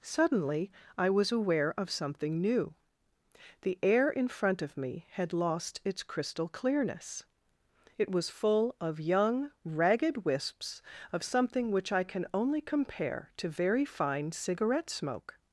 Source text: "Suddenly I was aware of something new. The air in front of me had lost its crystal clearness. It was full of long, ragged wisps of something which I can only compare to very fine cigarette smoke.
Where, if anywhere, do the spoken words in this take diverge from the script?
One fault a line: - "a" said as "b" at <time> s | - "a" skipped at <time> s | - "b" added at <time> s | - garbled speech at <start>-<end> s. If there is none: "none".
- "long" said as "young" at 9.0 s